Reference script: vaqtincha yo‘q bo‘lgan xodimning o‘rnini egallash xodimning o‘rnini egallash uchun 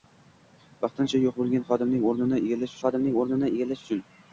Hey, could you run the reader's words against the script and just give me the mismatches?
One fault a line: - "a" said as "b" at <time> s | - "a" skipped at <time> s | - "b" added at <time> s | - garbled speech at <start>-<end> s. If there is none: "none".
none